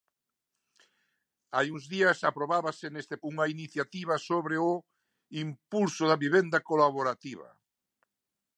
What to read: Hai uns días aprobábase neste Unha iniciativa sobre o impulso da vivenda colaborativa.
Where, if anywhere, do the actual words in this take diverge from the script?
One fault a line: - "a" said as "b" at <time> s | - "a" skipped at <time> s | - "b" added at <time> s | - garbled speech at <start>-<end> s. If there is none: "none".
none